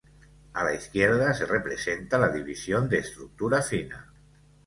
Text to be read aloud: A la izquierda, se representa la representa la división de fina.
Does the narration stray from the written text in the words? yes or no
yes